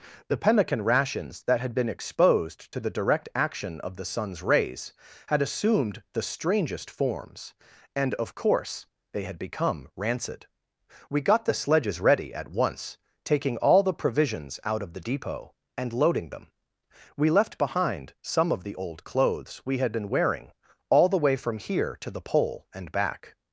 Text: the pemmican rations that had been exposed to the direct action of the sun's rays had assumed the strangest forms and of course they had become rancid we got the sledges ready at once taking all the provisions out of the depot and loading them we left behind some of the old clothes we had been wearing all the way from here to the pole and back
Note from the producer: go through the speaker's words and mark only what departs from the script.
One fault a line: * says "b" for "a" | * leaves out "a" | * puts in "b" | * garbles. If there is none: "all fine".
all fine